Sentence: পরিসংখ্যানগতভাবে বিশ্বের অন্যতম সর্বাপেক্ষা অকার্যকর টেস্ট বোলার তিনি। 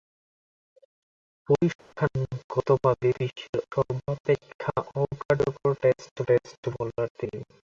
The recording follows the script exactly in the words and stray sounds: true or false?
false